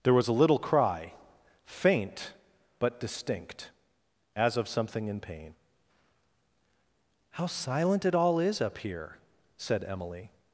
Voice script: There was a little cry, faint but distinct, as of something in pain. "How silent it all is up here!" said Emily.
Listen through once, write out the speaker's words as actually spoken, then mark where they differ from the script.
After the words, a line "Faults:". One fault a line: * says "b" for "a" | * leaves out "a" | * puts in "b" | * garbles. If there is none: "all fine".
There was a little cry, faint but distinct, as of something in pain. "How silent it all is up here!" said Emily.
Faults:
all fine